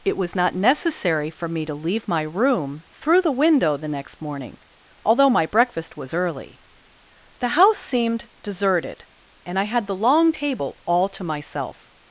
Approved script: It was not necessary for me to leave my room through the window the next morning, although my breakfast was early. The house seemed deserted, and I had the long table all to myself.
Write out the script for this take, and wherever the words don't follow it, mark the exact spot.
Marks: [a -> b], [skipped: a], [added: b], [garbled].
It was not necessary for me to leave my room through the window the next morning, although my breakfast was early. The house seemed deserted, and I had the long table all to myself.